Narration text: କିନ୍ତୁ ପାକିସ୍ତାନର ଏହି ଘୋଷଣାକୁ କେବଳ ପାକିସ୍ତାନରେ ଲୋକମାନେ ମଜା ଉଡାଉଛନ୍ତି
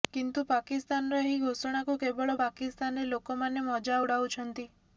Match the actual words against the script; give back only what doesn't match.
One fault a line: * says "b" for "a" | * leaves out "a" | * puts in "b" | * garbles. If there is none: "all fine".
all fine